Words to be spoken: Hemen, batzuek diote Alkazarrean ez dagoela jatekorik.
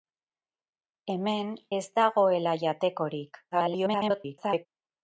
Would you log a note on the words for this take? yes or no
yes